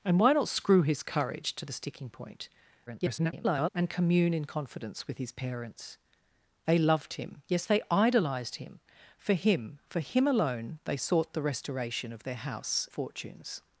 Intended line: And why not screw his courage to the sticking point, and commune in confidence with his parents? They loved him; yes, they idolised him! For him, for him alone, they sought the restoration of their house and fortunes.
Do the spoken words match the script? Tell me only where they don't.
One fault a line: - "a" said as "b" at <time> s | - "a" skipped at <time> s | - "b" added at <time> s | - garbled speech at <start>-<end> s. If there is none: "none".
- garbled speech at 2.9-3.7 s
- "and" skipped at 12.9 s